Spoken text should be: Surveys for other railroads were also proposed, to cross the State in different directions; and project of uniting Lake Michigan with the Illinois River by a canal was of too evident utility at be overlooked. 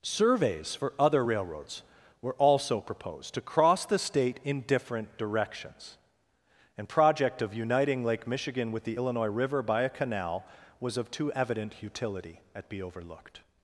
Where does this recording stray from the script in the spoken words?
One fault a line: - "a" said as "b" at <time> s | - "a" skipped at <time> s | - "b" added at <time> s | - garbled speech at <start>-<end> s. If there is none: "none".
none